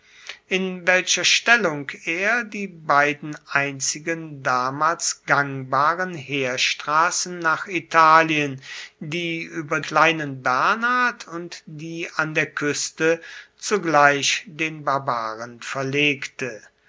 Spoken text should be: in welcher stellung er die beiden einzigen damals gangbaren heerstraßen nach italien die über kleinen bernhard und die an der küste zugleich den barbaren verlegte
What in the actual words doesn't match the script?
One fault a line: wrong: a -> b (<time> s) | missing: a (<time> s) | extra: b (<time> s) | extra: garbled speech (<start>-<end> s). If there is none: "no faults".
no faults